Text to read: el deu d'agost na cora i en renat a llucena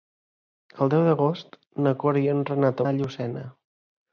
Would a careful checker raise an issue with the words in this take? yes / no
no